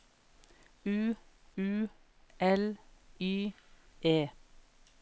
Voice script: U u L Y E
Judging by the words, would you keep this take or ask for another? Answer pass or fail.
pass